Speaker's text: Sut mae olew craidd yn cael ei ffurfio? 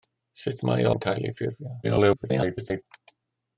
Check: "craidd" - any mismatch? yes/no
yes